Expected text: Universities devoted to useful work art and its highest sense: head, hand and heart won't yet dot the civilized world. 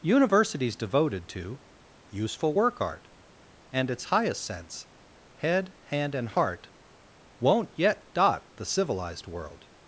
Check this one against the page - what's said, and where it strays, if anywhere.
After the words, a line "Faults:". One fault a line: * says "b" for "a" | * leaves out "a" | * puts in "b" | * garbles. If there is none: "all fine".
Universities devoted to useful work art and its highest sense: head, hand and heart won't yet dot the civilized world.
Faults:
all fine